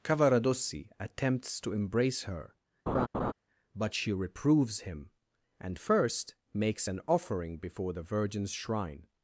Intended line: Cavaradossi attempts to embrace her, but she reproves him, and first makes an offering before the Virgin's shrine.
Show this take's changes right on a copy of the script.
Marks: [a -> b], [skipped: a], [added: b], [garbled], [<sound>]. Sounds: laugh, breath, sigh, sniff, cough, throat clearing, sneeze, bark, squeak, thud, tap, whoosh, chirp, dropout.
Cavaradossi attempts to embrace her, [laugh] but she reproves him, and first makes an offering before the Virgin's shrine.